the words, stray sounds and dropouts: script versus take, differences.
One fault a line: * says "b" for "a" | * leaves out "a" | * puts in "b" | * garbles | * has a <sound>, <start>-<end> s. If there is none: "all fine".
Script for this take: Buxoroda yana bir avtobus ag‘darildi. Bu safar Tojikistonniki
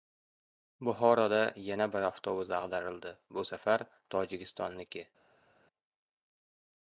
all fine